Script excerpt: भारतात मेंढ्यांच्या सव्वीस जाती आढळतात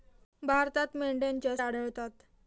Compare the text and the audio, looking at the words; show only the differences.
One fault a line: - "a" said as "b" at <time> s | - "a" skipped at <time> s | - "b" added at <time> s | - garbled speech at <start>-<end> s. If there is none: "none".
- "सव्वीस जाती" skipped at 1.6 s